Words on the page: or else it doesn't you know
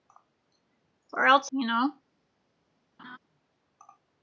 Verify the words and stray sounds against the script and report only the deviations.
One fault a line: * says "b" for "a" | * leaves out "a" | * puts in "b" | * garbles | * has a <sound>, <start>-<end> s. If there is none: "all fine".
* leaves out "it doesn't"
* has a laugh, 3.0-3.2 s